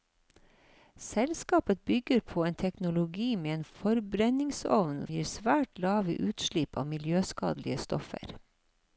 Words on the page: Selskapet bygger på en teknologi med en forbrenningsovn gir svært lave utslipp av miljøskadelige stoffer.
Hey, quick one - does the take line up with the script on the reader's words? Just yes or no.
yes